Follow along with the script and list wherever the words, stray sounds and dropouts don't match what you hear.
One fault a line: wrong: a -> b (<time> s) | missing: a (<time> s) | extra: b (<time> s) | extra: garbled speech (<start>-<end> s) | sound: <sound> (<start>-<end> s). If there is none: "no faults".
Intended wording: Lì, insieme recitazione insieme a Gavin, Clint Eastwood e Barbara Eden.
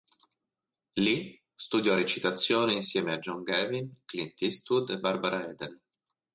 wrong: insieme -> studiò (1.5 s)
extra: John (3.2 s)